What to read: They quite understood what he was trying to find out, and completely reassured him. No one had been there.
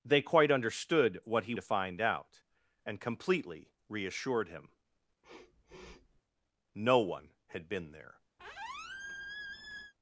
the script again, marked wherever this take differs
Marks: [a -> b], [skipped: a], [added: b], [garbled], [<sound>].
They quite understood what he [skipped: was trying] to find out, and completely reassured him. [sniff] No one had been there. [squeak]